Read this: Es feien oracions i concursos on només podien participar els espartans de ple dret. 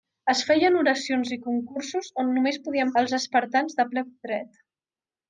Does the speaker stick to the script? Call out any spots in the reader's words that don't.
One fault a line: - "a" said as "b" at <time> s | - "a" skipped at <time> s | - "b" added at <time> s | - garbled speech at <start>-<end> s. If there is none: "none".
- "participar" skipped at 3.0 s